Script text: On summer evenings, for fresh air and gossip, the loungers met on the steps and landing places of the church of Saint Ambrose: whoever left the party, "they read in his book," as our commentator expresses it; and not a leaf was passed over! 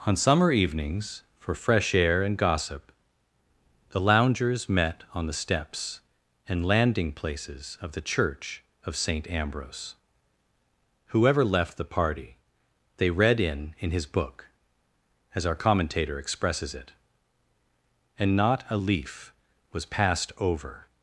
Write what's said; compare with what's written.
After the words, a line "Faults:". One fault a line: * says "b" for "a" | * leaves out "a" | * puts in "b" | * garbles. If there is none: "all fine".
On summer evenings, for fresh air and gossip, the loungers met on the steps and landing places of the church of Saint Ambrose: whoever left the party, "they read in in his book," as our commentator expresses it; and not a leaf was passed over!
Faults:
* puts in "in"